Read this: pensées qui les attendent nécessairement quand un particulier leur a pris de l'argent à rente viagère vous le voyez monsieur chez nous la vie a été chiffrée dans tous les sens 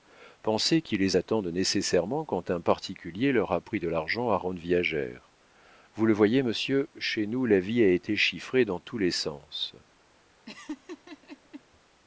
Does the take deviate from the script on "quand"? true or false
false